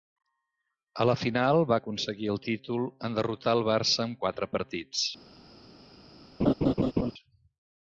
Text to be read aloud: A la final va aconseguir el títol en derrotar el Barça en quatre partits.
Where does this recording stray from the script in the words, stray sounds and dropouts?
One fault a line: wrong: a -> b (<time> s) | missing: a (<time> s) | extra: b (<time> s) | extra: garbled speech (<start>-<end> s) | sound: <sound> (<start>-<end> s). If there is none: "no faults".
sound: laugh (6.4-7.1 s)